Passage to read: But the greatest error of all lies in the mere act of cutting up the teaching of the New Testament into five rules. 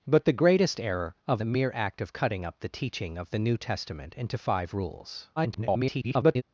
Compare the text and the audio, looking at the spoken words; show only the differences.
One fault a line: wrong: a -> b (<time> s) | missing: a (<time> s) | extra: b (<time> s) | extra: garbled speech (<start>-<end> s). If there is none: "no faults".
missing: all lies in (1.4 s)
extra: garbled speech (5.4-6.4 s)